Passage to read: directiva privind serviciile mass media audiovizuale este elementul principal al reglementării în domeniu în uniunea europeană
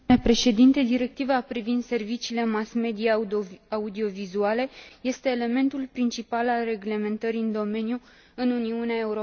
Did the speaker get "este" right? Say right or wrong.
right